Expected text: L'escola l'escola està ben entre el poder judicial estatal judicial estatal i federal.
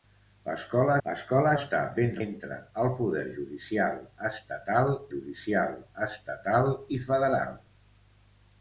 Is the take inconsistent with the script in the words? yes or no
no